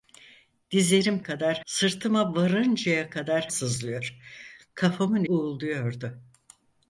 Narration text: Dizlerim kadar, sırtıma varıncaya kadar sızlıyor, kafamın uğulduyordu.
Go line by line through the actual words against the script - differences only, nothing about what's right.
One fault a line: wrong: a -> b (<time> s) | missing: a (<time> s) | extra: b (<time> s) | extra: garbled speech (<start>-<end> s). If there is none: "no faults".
no faults